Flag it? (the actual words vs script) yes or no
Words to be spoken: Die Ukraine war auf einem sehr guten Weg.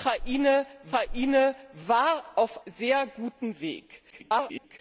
yes